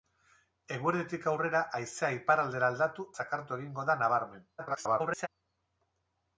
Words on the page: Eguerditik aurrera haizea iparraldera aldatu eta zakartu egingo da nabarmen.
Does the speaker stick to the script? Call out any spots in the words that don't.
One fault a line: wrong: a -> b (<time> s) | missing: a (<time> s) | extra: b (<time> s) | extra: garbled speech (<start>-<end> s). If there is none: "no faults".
missing: eta (3.1 s)
extra: garbled speech (4.6-5.3 s)